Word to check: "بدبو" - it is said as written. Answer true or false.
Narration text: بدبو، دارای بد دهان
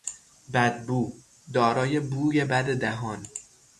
true